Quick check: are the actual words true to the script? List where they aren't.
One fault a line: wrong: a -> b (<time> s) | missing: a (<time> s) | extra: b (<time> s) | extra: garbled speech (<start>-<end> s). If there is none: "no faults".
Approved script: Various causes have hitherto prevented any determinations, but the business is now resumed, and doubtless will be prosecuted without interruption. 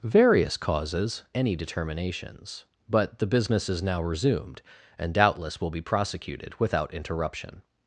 missing: have hitherto prevented (1.2 s)